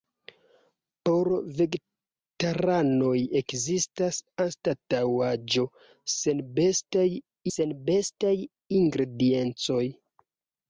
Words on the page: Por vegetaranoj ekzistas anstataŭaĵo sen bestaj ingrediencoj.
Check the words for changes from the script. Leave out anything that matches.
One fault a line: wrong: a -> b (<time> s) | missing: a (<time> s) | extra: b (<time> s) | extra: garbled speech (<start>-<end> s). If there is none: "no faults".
extra: sen bestaj (7.5 s)